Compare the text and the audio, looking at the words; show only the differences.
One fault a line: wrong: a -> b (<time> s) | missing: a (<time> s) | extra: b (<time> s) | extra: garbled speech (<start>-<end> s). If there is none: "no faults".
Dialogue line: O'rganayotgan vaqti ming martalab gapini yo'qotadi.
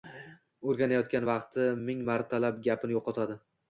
no faults